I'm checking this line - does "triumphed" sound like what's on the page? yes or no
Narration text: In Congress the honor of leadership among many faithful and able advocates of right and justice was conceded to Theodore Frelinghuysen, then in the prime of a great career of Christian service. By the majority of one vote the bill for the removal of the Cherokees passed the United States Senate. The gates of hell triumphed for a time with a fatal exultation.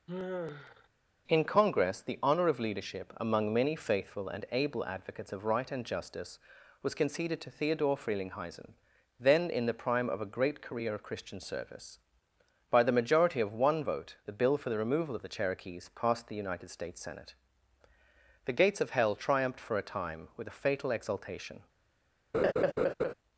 yes